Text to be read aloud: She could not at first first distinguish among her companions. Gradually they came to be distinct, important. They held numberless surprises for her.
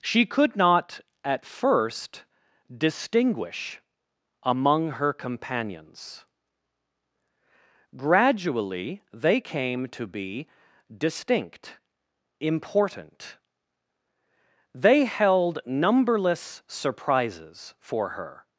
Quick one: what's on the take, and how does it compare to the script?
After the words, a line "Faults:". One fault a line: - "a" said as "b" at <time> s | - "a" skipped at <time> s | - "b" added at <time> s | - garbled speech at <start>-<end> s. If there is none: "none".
She could not at first distinguish among her companions. Gradually they came to be distinct, important. They held numberless surprises for her.
Faults:
- "first" skipped at 2.2 s